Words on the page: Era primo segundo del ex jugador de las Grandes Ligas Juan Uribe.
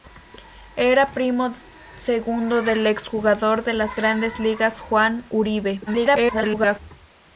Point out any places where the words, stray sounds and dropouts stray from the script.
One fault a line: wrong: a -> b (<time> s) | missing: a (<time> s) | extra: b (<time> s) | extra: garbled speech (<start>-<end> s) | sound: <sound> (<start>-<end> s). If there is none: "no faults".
extra: garbled speech (5.9-6.8 s)